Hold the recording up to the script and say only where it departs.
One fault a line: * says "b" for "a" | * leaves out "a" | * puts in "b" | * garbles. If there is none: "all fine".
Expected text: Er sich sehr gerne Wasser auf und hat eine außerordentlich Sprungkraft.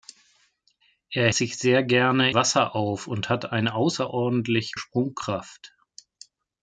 all fine